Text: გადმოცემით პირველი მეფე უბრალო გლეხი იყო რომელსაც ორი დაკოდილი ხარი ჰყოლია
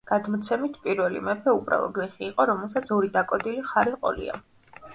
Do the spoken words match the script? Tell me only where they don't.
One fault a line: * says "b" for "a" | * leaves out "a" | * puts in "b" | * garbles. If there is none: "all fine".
all fine